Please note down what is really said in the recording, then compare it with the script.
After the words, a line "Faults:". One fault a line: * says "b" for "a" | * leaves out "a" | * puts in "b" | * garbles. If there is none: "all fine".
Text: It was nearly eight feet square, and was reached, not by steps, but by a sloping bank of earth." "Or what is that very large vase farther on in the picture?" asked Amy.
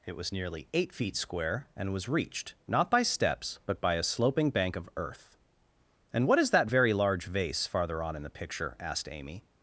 It was nearly eight feet square, and was reached, not by steps, but by a sloping bank of earth." "And what is that very large vase farther on in the picture?" asked Amy.
Faults:
* says "And" for "Or"